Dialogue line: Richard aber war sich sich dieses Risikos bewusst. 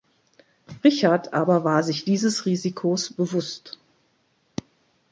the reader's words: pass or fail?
fail